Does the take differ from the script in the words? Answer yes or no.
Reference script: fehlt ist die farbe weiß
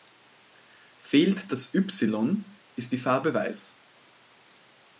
yes